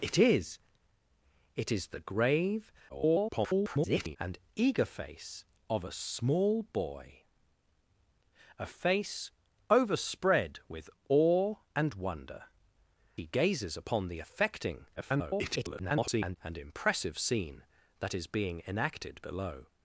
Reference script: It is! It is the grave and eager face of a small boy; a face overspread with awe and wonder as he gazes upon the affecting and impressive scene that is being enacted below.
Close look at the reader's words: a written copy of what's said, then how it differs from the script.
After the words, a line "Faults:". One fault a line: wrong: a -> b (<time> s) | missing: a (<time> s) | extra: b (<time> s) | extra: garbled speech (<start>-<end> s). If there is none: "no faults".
It is! It is the grave [garbled] and eager face of a small boy; a face overspread with awe and wonder he gazes upon the affecting [garbled] and impressive scene that is being enacted below.
Faults:
extra: garbled speech (2.9-4.2 s)
missing: as (12.4 s)
extra: garbled speech (15.0-16.4 s)